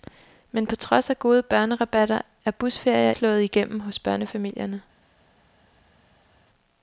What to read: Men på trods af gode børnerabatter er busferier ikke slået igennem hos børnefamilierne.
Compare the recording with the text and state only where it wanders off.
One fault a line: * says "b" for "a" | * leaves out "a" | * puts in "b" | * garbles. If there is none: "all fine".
* leaves out "ikke"